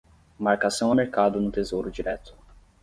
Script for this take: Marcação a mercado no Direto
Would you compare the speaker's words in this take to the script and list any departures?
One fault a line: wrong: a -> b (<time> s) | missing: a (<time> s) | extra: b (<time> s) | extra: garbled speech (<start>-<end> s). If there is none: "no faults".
extra: Tesouro (1.5 s)